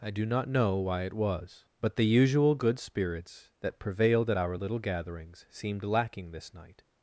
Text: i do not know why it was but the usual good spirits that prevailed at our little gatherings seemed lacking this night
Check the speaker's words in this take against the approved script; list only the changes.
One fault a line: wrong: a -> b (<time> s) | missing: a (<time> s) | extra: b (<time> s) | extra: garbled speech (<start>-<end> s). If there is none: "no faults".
no faults